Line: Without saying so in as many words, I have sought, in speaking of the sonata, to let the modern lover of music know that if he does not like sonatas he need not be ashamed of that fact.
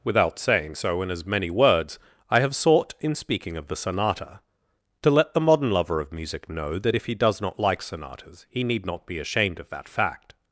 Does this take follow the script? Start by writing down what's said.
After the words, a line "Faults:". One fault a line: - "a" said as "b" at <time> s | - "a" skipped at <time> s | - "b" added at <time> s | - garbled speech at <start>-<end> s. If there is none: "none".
Without saying so in as many words, I have sought, in speaking of the sonata, to let the modern lover of music know that if he does not like sonatas he need not be ashamed of that fact.
Faults:
none